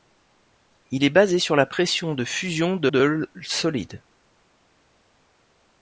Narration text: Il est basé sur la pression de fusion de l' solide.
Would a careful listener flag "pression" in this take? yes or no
no